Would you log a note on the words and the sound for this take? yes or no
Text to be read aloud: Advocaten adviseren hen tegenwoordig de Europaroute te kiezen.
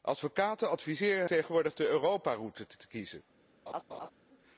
yes